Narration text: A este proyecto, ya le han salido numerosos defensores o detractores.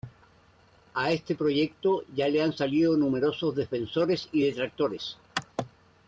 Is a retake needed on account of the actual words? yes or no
yes